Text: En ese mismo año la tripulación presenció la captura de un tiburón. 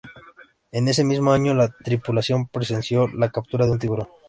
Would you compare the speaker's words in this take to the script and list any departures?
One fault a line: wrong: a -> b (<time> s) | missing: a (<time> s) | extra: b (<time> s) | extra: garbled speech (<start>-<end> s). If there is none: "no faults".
no faults